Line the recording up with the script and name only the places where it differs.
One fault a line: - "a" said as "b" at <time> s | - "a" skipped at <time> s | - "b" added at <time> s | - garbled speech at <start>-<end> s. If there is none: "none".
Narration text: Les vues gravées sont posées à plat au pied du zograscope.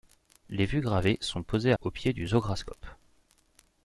- "à plat" skipped at 1.7 s